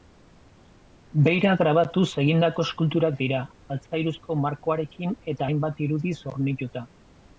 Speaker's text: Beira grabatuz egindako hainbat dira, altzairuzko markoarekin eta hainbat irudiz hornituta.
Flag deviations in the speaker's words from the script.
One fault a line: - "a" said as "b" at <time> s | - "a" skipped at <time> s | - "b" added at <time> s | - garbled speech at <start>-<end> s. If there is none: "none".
- "hainbat" said as "eskulturak" at 2.7 s